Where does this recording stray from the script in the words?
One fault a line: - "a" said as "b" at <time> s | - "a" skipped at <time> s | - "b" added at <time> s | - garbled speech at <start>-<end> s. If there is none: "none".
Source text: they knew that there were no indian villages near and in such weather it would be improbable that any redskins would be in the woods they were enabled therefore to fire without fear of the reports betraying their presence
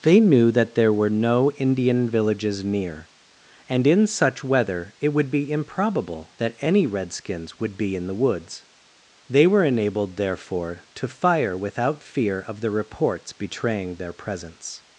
none